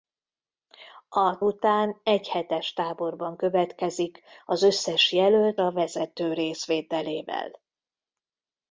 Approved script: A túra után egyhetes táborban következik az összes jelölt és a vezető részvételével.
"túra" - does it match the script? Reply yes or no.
no